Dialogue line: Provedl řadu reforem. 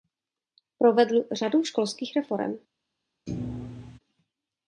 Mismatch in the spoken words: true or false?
true